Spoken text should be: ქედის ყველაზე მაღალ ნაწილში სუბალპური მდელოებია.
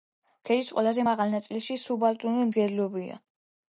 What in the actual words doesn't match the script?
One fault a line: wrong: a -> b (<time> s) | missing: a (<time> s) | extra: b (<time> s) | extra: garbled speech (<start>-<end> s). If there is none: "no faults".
no faults